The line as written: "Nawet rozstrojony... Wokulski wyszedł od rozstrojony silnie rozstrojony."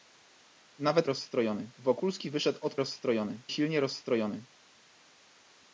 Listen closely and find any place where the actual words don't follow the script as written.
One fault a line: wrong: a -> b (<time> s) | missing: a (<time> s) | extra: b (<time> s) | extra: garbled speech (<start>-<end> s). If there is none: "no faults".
no faults